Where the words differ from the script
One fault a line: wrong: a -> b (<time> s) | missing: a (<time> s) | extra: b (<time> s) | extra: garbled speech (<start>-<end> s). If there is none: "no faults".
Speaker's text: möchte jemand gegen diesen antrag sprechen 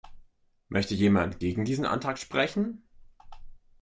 no faults